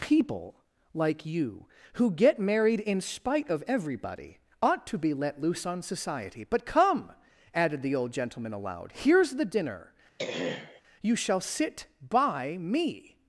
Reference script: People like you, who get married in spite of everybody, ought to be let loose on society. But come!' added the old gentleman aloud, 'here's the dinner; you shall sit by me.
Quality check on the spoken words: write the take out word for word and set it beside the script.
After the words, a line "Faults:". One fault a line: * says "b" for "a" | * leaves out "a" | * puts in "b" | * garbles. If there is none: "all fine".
People like you, who get married in spite of everybody, ought to be let loose on society. But come!' added the old gentleman aloud, 'here's the dinner; you shall sit by me.
Faults:
all fine